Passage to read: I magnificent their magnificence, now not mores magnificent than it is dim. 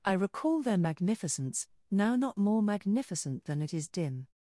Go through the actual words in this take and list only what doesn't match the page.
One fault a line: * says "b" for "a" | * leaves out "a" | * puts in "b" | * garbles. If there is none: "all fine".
* says "recall" for "magnificent"
* says "more" for "mores"